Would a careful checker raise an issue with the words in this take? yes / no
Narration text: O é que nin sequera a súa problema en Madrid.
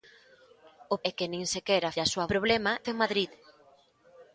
no